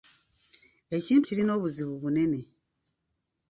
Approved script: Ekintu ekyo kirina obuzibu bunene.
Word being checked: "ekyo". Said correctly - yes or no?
no